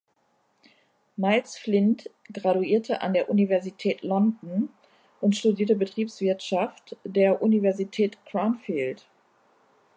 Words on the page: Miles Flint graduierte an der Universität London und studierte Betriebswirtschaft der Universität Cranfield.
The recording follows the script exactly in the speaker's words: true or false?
true